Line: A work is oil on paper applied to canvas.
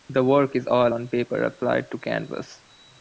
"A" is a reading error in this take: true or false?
true